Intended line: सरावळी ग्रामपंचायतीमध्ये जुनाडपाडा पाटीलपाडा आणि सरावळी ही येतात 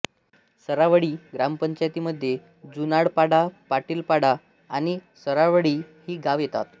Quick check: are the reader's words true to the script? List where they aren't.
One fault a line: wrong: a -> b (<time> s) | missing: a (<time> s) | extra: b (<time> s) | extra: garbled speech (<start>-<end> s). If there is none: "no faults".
extra: गावे (6.2 s)